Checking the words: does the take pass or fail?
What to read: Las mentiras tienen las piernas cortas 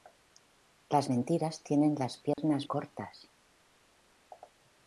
pass